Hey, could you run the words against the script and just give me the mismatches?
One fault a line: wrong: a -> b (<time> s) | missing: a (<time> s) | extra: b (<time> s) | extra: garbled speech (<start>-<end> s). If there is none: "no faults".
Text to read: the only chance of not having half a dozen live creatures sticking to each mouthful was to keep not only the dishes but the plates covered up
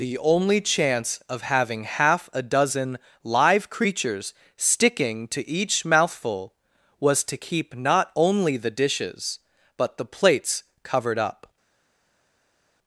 missing: not (1.4 s)